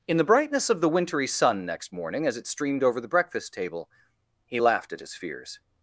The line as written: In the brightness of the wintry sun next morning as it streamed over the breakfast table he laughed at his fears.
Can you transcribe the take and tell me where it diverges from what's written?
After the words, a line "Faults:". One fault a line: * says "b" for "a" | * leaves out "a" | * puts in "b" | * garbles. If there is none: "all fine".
In the brightness of the wintry sun next morning as it streamed over the breakfast table he laughed at his fears.
Faults:
all fine